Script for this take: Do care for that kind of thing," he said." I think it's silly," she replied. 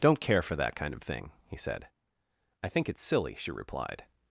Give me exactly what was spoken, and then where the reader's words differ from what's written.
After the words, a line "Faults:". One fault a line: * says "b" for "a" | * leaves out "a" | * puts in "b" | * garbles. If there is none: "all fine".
Don't care for that kind of thing," he said." I think it's silly," she replied.
Faults:
* says "Don't" for "Do"